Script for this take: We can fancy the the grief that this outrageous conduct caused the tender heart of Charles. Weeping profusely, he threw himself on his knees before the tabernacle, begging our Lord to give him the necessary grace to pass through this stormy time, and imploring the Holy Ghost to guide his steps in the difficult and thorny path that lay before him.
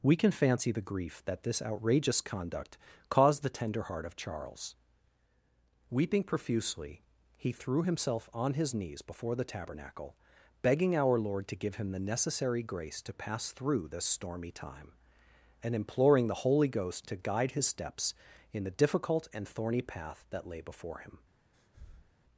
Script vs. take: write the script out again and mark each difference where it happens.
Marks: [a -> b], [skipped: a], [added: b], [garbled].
We can fancy the [skipped: the] grief that this outrageous conduct caused the tender heart of Charles. Weeping profusely, he threw himself on his knees before the tabernacle, begging our Lord to give him the necessary grace to pass through this stormy time, and imploring the Holy Ghost to guide his steps in the difficult and thorny path that lay before him.